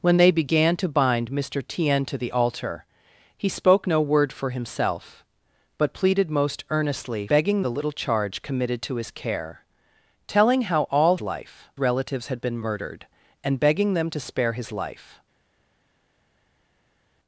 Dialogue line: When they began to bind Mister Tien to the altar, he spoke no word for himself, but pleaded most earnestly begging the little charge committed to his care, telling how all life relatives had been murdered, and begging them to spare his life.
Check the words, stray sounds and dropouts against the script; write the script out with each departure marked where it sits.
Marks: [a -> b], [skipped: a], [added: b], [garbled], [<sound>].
When they began to bind Mister Tien to the altar, he spoke no word for himself, but pleaded most earnestly begging the little charge committed to his care, telling how all life relatives had been murdered, and begging them to spare his life.